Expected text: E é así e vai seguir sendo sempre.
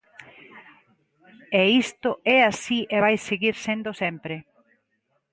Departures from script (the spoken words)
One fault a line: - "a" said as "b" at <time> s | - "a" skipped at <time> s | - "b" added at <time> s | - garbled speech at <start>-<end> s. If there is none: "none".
- "isto" added at 1.8 s